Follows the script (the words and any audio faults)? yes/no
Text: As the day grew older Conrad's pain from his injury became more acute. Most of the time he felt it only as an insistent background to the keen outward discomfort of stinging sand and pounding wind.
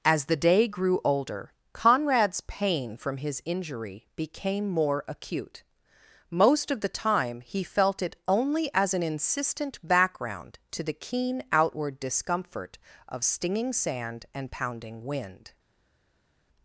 yes